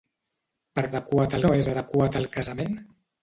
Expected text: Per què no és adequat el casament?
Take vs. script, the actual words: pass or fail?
fail